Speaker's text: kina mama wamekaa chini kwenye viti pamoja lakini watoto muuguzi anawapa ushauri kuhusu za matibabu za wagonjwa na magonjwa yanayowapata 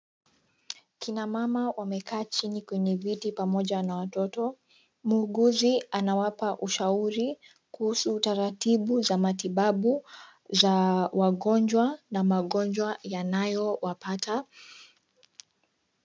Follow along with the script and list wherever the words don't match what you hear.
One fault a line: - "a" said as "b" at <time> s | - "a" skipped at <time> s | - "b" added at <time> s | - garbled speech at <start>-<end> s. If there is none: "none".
- "lakini" said as "na" at 3.8 s
- "taratibu" added at 8.2 s